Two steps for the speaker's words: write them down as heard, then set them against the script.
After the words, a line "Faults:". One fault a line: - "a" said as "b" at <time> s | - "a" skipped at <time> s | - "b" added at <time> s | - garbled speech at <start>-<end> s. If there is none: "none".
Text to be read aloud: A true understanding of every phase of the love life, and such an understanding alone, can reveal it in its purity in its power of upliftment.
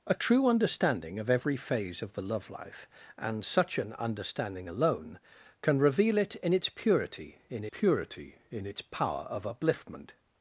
A true understanding of every phase of the love life, and such an understanding alone, can reveal it in its purity in purity in its power of upliftment.
Faults:
- "purity in" added at 7.7 s